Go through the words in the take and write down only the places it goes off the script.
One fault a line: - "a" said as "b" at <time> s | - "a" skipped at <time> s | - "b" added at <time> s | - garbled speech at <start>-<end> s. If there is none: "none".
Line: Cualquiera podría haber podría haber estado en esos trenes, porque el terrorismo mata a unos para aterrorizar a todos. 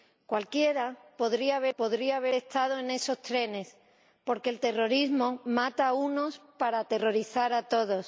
none